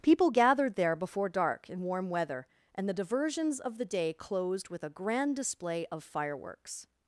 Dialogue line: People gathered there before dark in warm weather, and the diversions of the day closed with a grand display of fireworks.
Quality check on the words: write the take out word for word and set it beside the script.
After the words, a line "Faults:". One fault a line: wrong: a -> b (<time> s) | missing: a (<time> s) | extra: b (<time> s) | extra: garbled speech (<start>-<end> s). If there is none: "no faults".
People gathered there before dark in warm weather, and the diversions of the day closed with a grand display of fireworks.
Faults:
no faults